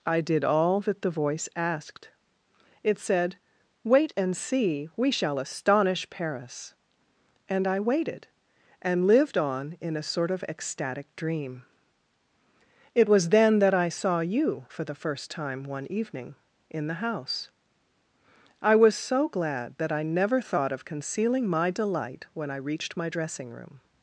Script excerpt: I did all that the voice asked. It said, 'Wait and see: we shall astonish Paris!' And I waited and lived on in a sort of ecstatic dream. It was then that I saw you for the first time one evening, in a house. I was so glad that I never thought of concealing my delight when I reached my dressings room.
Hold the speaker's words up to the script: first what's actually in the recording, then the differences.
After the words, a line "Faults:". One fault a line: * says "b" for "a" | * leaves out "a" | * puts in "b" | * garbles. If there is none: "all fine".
I did all that the voice asked. It said, 'Wait and see: we shall astonish Paris!' And I waited and lived on in a sort of ecstatic dream. It was then that I saw you for the first time one evening, in the house. I was so glad that I never thought of concealing my delight when I reached my dressing room.
Faults:
* says "the" for "a"
* says "dressing" for "dressings"